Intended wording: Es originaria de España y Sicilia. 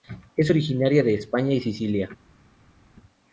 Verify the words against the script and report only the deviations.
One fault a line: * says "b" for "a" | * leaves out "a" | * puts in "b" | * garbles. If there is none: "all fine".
all fine